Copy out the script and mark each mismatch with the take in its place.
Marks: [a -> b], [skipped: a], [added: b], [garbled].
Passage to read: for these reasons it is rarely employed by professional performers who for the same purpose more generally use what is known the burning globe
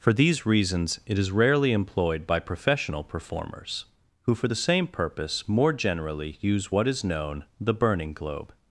for these reasons it is rarely employed by professional performers who for the same purpose more generally use what is known the burning globe